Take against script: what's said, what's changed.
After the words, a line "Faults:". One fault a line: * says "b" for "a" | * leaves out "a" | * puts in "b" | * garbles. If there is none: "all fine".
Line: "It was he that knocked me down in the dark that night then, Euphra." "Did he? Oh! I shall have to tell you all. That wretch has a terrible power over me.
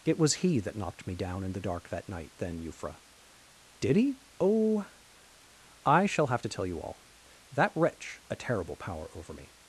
"It was he that knocked me down in the dark that night then, Euphra." "Did he? Oh! I shall have to tell you all. That wretch a terrible power over me.
Faults:
* leaves out "has"